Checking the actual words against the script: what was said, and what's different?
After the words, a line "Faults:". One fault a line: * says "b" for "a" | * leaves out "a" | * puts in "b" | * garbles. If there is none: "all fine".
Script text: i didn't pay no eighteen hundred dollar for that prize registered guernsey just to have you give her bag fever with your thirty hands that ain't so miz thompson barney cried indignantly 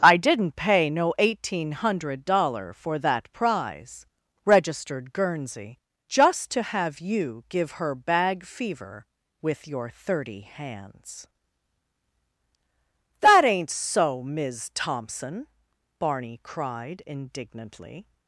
i didn't pay no eighteen hundred dollar for that prize registered guernsey just to have you give her bag fever with your thirty hands that ain't so miz thompson barney cried indignantly
Faults:
all fine